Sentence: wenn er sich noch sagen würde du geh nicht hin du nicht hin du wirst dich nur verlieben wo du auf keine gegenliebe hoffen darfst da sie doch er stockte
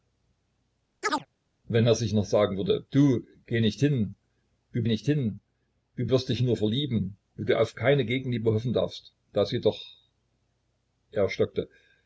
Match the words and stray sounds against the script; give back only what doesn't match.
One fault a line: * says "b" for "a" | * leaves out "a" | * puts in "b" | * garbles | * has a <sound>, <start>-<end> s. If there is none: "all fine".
* has a chirp, 1.0-1.3 s